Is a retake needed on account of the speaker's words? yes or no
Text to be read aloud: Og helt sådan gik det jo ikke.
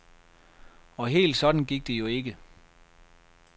no